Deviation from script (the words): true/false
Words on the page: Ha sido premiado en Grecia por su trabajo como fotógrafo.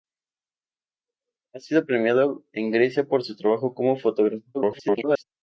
true